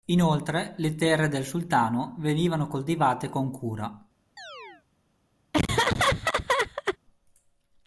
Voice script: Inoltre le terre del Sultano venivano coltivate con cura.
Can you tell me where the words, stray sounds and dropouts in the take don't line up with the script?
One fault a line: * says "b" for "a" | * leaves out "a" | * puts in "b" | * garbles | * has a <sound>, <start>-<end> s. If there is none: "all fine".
* has a chirp, 4.4-4.8 s
* has a laugh, 5.5-7.0 s